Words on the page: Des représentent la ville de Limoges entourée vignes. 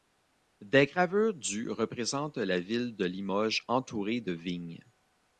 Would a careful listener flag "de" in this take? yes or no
no